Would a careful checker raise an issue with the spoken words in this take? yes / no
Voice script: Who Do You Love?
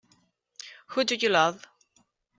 no